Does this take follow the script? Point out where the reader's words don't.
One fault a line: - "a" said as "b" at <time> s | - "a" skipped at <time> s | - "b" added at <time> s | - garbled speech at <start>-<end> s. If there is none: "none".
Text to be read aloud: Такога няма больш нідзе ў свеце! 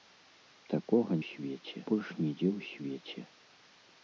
- "няма" said as "свеце" at 1.3 s